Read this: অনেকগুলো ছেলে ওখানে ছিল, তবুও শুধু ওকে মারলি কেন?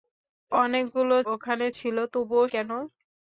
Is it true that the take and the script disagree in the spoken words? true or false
true